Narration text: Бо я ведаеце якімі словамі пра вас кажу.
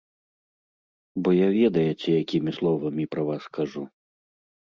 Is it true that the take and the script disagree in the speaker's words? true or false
false